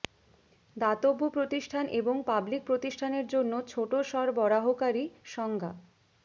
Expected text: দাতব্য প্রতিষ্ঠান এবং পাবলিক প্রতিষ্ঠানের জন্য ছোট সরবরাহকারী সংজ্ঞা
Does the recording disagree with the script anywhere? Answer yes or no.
no